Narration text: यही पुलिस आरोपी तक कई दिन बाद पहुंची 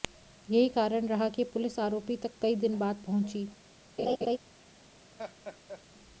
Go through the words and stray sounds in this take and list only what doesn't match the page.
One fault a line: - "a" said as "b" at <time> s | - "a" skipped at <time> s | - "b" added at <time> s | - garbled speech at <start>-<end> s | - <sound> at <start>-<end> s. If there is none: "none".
- "कारण रहा कि" added at 0.7 s
- laugh at 4.0-4.4 s
- laugh at 5.2-5.8 s